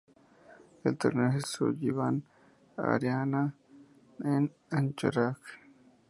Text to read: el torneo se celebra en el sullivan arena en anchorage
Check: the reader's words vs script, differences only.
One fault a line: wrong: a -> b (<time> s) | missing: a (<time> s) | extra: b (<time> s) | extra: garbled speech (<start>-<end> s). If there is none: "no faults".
missing: celebra en el (1.4 s)